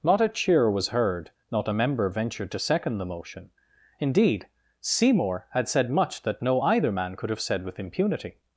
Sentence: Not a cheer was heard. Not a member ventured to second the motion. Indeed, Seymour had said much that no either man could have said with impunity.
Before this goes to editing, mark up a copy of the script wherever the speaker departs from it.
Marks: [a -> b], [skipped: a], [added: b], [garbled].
Not a cheer was heard. Not a member ventured to second the motion. Indeed, Seymour had said much that no either man could have said with impunity.